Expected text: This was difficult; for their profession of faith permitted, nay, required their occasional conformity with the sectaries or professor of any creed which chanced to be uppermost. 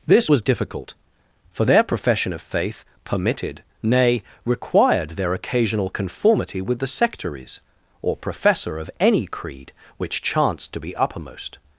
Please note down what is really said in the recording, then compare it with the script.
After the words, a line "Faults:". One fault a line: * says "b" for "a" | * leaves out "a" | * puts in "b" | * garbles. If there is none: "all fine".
This was difficult; for their profession of faith permitted, nay, required their occasional conformity with the sectaries or professor of any creed which chanced to be uppermost.
Faults:
all fine